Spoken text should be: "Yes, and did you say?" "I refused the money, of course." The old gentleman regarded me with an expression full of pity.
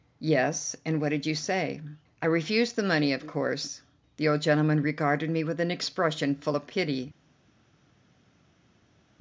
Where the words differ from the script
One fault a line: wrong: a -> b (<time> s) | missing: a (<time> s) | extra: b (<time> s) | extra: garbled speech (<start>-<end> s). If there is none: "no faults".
extra: what (1.0 s)